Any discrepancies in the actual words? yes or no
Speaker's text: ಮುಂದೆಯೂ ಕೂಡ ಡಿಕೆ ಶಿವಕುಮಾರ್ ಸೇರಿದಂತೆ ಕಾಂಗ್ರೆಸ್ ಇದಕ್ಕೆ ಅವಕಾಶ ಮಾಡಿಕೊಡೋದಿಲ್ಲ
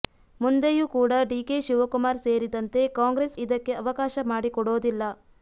no